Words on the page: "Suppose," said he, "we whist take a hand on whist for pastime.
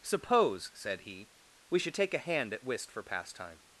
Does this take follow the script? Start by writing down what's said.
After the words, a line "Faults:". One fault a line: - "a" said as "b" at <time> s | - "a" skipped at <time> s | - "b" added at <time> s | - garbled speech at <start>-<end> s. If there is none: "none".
"Suppose," said he, "we should take a hand at whist for pastime.
Faults:
- "whist" said as "should" at 1.8 s
- "on" said as "at" at 2.5 s